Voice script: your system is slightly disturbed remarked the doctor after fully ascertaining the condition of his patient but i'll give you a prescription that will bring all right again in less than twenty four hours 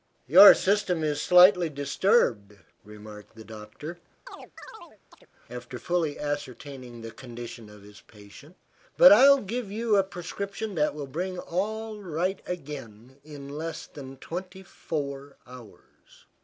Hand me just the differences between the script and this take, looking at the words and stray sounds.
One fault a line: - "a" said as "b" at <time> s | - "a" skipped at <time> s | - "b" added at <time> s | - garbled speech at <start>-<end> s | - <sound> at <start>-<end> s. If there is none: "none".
- chirp at 4.3-5.3 s